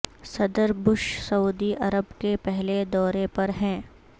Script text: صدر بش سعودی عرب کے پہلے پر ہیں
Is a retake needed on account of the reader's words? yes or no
yes